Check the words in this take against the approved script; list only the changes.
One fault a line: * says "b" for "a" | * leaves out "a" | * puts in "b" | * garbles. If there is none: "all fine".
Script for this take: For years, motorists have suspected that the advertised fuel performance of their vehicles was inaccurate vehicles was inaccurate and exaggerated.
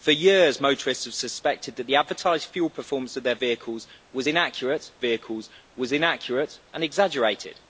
all fine